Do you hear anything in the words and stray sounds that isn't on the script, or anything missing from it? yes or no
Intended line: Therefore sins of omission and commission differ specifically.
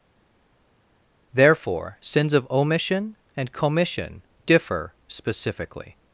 no